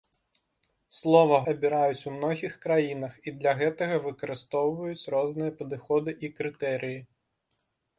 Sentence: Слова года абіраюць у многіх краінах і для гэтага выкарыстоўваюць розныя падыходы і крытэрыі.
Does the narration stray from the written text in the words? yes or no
yes